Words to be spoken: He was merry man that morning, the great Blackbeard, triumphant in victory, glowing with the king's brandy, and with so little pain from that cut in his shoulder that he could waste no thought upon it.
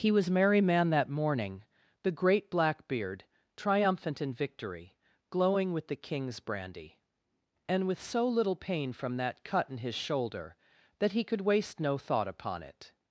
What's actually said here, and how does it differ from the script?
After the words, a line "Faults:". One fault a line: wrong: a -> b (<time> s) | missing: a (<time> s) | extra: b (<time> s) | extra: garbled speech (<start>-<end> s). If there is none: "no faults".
He was merry man that morning, the great Blackbeard, triumphant in victory, glowing with the king's brandy, and with so little pain from that cut in his shoulder that he could waste no thought upon it.
Faults:
no faults